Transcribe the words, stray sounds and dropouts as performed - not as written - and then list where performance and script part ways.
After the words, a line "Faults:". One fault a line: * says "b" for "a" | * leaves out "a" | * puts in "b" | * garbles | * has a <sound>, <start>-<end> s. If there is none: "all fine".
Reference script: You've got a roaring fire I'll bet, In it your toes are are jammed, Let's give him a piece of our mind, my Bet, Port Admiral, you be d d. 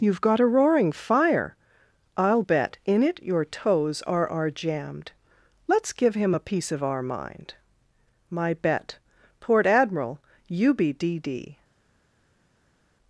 You've got a roaring fire I'll bet, In it your toes are are jammed, Let's give him a piece of our mind, my Bet, Port Admiral, you be d d.
Faults:
all fine